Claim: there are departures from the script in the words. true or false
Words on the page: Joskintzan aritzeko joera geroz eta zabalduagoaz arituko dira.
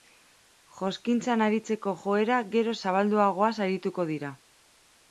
true